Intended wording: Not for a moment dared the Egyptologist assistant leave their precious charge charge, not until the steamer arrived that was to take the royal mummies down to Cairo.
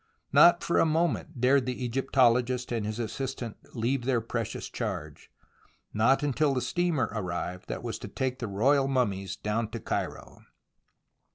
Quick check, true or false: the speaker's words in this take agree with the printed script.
false